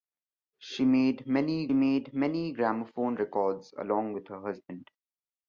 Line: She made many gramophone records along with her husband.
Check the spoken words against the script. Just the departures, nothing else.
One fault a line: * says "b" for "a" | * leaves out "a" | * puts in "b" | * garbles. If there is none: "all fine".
* puts in "made many"